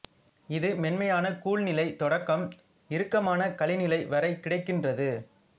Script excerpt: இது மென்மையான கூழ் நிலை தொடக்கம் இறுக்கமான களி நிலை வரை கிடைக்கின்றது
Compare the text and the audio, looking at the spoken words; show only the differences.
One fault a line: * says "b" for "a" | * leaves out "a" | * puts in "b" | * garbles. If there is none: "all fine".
all fine